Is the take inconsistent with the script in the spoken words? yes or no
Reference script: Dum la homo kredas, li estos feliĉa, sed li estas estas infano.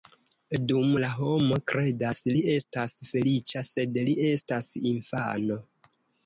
yes